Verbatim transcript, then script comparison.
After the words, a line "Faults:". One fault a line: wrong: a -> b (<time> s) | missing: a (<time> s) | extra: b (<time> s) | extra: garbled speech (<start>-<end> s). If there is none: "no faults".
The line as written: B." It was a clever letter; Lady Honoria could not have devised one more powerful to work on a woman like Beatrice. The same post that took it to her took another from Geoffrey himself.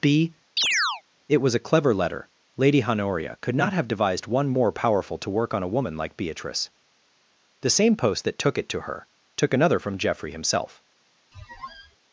B." It was a clever letter; Lady Honoria could not have devised one more powerful to work on a woman like Beatrice. The same post that took it to her took another from Geoffrey himself.
Faults:
no faults